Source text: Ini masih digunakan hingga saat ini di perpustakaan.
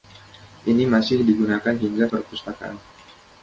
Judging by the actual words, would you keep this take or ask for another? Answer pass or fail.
fail